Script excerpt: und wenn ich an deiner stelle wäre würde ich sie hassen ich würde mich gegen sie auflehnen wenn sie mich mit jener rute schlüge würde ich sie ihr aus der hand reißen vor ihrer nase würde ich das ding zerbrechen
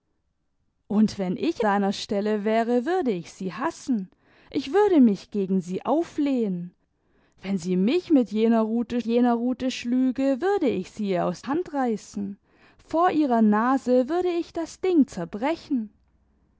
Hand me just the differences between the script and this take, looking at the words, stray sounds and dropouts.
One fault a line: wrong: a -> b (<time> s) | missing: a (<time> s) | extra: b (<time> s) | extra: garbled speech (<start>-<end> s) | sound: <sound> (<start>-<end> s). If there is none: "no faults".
missing: an (1.6 s)
extra: jener rute (9.0 s)
missing: der (11.4 s)